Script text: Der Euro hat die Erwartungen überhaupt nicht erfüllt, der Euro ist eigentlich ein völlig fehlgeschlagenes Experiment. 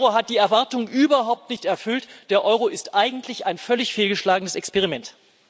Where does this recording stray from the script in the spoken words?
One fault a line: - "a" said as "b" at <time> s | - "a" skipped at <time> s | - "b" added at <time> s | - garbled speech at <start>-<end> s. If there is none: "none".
none